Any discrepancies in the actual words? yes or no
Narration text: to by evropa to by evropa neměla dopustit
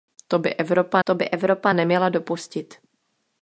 no